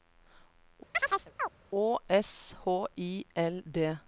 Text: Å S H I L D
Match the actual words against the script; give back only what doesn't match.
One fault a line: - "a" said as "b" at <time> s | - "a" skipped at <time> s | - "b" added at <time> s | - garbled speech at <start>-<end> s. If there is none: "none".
none